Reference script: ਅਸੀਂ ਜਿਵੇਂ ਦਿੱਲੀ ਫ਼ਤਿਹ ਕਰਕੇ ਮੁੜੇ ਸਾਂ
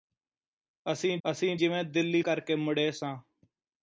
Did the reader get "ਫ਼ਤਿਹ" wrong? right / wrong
wrong